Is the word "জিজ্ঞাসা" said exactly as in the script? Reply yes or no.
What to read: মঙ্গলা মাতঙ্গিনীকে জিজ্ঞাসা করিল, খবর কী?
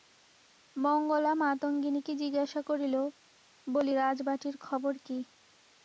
yes